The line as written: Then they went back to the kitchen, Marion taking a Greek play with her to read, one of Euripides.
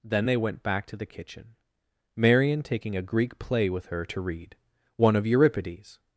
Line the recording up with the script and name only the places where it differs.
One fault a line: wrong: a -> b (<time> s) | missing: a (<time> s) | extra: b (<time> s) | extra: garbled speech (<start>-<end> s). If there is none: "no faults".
no faults